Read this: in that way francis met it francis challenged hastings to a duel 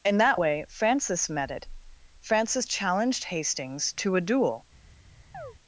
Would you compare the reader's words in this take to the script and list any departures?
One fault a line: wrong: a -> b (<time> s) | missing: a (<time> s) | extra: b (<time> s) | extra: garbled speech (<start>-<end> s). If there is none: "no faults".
no faults